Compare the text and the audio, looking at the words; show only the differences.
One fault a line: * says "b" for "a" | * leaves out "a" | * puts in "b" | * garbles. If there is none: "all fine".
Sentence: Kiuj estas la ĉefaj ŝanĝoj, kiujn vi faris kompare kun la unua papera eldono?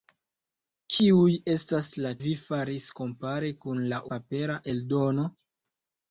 * leaves out "ĉefaj ŝanĝoj kiujn"
* leaves out "unua"